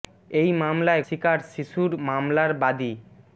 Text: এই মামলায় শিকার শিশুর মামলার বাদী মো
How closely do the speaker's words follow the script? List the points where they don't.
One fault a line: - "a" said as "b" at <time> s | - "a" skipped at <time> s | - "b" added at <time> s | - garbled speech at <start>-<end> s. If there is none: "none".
none